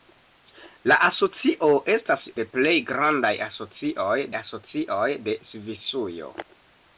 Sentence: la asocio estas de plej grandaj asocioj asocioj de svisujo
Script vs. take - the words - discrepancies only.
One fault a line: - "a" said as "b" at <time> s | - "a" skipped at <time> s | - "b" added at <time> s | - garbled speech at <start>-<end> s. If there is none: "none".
none